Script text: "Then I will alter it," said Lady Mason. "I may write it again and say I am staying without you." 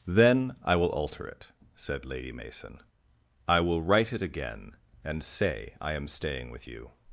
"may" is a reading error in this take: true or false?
true